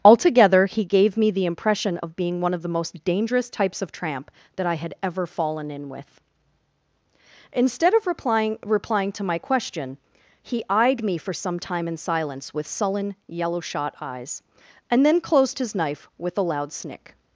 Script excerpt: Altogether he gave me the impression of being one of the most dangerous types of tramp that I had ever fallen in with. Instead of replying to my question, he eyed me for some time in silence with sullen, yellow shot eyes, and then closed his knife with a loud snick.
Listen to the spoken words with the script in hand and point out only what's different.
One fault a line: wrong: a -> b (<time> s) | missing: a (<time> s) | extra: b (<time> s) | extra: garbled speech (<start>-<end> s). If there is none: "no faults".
extra: replying (8.7 s)